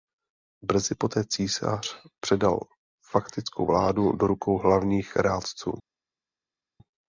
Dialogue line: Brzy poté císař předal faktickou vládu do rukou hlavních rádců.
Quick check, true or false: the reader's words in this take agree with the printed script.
true